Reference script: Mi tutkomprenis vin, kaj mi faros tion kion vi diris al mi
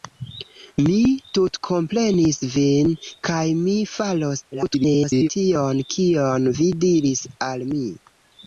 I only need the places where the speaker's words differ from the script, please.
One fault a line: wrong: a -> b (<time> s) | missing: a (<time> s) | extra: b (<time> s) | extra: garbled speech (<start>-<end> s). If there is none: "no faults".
extra: garbled speech (4.5-5.3 s)